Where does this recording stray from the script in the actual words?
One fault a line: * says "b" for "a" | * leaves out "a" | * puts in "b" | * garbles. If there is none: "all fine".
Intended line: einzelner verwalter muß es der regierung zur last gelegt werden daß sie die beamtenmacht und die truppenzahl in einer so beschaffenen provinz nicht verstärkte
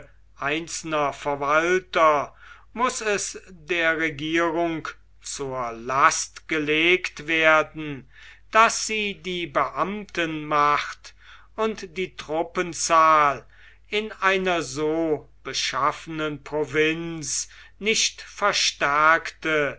all fine